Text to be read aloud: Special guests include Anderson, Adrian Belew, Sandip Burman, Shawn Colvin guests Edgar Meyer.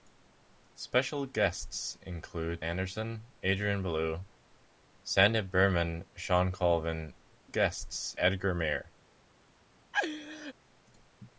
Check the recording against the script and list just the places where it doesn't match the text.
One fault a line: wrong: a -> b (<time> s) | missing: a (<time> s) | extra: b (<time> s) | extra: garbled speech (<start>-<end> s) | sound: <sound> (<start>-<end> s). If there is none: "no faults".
sound: laugh (9.9-10.5 s)